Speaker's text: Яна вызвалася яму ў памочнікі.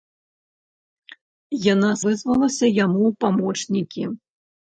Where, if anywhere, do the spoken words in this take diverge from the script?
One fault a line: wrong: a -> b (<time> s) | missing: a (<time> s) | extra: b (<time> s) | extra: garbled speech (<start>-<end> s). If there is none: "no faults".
no faults